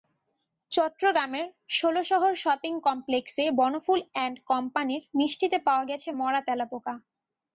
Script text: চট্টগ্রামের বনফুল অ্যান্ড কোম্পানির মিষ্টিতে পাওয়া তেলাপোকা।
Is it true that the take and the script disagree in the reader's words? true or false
true